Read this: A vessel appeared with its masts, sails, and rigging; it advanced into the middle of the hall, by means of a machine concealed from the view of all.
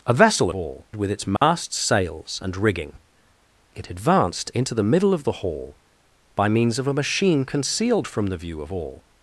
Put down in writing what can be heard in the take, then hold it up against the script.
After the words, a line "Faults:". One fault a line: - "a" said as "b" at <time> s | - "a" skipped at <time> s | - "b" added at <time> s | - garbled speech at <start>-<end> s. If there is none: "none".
A vessel all with its masts, sails, and rigging; it advanced into the middle of the hall, by means of a machine concealed from the view of all.
Faults:
- "appeared" said as "all" at 0.5 s